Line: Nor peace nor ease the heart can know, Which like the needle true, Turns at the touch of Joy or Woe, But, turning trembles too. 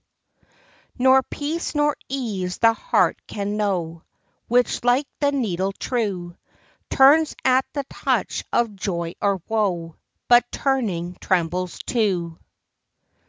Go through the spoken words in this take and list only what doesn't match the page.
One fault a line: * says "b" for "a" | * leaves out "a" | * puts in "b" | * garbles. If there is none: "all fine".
all fine